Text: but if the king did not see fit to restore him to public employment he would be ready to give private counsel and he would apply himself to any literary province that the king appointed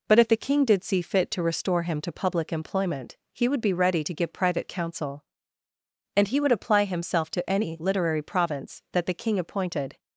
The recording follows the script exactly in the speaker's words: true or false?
false